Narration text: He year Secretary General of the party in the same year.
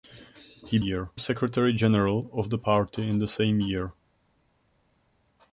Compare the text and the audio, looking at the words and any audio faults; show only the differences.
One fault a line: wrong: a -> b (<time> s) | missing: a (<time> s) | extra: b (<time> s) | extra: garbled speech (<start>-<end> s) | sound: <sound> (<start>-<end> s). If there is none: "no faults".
no faults